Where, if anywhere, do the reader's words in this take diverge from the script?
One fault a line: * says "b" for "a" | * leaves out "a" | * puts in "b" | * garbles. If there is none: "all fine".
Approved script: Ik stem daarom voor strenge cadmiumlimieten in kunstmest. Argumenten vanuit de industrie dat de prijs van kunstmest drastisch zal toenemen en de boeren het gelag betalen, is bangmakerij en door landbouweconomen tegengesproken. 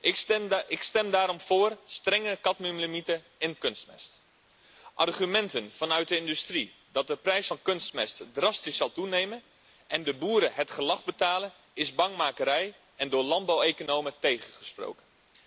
all fine